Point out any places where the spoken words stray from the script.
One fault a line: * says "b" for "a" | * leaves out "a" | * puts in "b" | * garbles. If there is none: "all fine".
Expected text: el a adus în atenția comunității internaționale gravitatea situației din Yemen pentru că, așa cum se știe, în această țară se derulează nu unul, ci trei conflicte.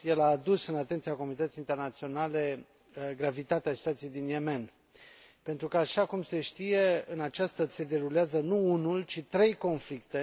* leaves out "țară"